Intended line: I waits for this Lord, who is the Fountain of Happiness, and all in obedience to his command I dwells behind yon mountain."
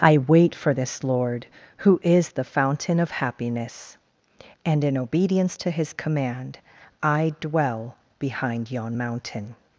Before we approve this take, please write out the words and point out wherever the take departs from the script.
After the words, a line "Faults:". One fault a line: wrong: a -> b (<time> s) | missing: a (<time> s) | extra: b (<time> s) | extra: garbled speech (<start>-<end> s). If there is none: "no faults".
I wait for this Lord, who is the Fountain of Happiness, and in obedience to his command I dwell behind yon mountain."
Faults:
wrong: waits -> wait (0.2 s)
missing: all (4.8 s)
wrong: dwells -> dwell (7.4 s)